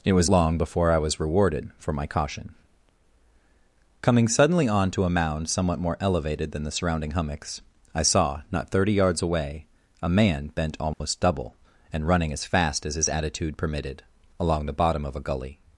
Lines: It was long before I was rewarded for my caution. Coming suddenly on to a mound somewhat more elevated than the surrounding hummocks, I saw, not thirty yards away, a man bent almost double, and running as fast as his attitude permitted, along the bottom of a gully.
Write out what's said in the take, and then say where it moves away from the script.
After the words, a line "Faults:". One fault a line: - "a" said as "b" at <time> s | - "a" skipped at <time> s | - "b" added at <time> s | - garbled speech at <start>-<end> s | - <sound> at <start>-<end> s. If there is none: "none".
It was long before I was rewarded for my caution. Coming suddenly on to a mound somewhat more elevated than the surrounding hummocks, I saw, not thirty yards away, a man bent almost double, and running as fast as his attitude permitted, along the bottom of a gully.
Faults:
- dropout at 10.9-11.0 s